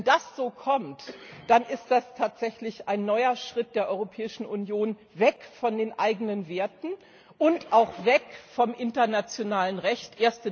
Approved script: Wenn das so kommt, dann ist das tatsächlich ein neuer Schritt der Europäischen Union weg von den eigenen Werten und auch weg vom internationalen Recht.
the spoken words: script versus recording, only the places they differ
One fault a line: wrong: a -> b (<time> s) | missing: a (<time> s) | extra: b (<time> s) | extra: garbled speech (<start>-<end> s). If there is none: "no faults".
no faults